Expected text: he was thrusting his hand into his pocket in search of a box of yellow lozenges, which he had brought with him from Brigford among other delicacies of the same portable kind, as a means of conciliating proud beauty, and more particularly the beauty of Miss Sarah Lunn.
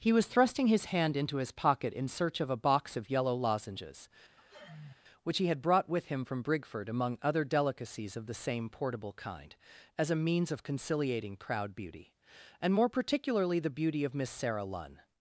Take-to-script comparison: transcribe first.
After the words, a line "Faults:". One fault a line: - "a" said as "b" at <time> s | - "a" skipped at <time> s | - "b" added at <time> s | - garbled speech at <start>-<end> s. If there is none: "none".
he was thrusting his hand into his pocket in search of a box of yellow lozenges, which he had brought with him from Brigford among other delicacies of the same portable kind, as a means of conciliating proud beauty, and more particularly the beauty of Miss Sarah Lunn.
Faults:
none